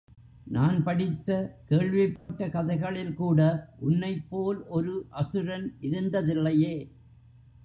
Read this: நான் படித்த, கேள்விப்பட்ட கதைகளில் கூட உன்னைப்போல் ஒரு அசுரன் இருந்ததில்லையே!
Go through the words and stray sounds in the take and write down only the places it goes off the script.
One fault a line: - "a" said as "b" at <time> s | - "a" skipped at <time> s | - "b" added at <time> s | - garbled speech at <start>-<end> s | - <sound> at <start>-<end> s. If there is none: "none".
- dropout at 2.2-2.3 s